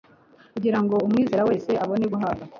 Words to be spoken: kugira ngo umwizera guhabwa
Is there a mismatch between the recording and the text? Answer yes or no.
yes